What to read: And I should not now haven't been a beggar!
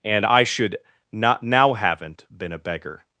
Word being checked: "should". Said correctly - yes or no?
yes